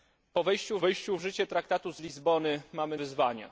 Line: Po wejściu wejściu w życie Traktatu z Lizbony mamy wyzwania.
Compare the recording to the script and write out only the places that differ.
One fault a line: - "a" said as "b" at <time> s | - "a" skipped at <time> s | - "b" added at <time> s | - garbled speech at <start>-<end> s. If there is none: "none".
none